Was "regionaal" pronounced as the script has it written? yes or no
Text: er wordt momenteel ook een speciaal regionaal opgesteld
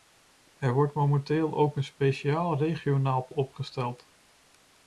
yes